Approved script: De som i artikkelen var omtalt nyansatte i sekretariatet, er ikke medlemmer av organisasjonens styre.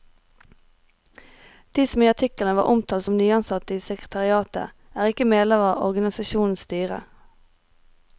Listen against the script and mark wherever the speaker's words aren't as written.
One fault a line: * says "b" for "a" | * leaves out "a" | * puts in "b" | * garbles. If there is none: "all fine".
* puts in "som"